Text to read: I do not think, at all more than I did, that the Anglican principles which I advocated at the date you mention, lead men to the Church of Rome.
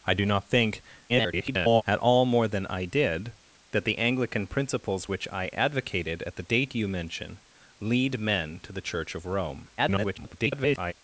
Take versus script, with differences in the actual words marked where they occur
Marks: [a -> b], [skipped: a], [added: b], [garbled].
I do not think, [garbled] at all more than I did, that the Anglican principles which I advocated at the date you mention, lead men to the Church of Rome. [garbled]